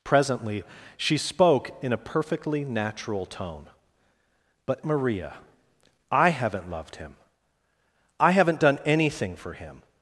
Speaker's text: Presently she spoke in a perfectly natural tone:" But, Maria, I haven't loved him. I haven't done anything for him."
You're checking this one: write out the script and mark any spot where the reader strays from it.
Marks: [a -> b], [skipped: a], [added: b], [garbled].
Presently she spoke in a perfectly natural tone:" But, Maria, I haven't loved him. I haven't done anything for him."